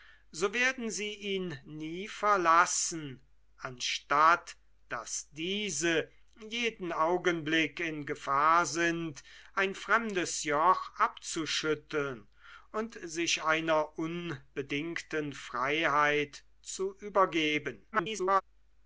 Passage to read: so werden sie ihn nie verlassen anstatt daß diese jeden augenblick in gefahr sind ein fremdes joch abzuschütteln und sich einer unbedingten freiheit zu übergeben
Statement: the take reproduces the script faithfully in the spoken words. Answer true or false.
false